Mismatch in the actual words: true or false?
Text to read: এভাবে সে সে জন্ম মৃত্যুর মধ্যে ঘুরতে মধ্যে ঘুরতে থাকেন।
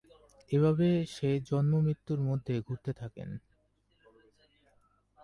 true